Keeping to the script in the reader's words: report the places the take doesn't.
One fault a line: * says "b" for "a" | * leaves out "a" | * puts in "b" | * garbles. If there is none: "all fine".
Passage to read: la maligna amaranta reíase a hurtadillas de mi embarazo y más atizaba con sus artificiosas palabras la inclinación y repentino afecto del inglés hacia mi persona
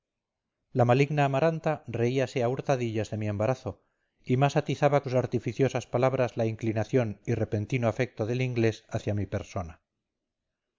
* leaves out "con"